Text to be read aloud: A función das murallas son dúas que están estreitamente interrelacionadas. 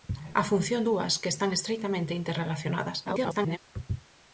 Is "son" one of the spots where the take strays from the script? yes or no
yes